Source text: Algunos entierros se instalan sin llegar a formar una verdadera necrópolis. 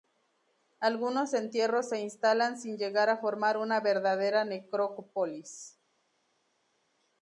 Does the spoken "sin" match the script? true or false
true